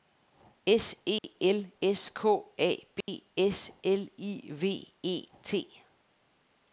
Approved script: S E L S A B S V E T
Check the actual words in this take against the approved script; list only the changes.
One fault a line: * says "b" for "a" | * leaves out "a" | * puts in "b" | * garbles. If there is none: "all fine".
* puts in "K"
* puts in "L I"